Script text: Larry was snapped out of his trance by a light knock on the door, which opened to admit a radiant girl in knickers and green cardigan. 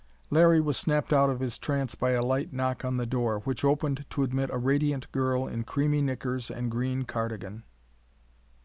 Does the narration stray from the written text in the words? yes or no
yes